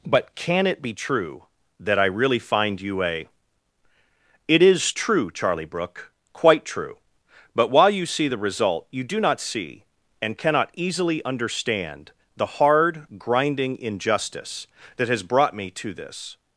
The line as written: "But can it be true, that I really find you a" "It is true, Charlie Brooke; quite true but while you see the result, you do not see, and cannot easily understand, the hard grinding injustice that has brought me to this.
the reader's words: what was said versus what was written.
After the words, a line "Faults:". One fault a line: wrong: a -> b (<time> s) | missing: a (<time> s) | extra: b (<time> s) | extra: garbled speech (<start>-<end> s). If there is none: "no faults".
"But can it be true, that I really find you a" "It is true, Charlie Brooke; quite true but while you see the result, you do not see, and cannot easily understand, the hard grinding injustice that has brought me to this.
Faults:
no faults